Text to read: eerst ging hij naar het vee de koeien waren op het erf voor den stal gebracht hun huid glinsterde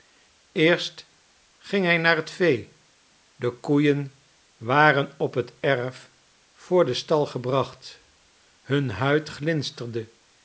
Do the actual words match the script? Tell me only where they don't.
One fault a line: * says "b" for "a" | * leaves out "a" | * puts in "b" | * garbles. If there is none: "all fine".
all fine